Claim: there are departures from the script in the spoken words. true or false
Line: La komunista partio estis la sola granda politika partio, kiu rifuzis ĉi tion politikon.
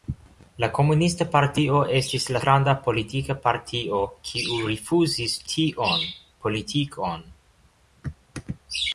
true